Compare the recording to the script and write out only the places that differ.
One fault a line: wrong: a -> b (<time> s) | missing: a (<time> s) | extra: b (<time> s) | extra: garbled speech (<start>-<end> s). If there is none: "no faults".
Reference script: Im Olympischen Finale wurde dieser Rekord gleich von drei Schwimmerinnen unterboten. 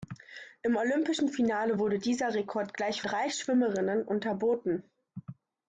missing: von (3.0 s)